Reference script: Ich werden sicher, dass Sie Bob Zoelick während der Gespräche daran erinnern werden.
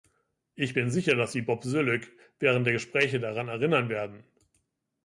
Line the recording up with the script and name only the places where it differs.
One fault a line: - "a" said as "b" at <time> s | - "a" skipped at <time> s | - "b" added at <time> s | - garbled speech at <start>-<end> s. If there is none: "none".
- "werden" said as "bin" at 0.7 s